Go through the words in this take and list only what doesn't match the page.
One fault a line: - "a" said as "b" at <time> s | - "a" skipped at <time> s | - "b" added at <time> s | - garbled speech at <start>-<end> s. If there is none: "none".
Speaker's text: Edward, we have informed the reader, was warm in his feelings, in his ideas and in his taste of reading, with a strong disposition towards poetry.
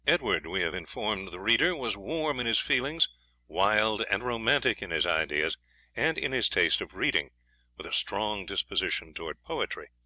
- "wild and romantic" added at 3.5 s